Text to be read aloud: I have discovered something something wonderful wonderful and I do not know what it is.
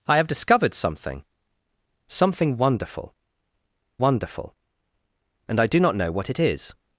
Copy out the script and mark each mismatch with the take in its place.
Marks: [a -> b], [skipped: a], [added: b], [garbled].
I have discovered something something wonderful wonderful and I do not know what it is.